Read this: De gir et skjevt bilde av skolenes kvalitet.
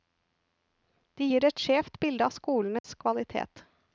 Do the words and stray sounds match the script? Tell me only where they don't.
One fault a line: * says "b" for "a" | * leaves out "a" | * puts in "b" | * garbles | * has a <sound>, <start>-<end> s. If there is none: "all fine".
* has a dropout, 2.8-2.8 s